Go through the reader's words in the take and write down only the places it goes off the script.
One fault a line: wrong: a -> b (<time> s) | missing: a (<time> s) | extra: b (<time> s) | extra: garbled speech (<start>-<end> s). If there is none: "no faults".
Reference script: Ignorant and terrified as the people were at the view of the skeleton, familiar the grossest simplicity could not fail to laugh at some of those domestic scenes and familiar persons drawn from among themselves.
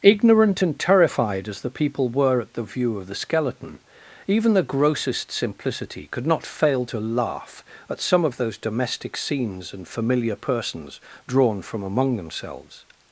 wrong: familiar -> even (4.3 s)